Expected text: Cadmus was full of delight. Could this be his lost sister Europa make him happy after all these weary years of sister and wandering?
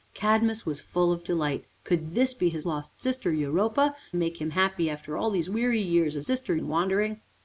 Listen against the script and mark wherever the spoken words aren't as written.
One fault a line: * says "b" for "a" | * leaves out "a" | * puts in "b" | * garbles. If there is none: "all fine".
all fine